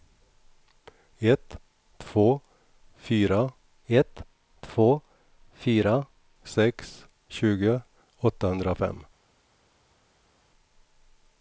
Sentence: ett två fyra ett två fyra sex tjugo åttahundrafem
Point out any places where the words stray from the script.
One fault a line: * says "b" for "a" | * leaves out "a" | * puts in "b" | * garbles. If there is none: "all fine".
all fine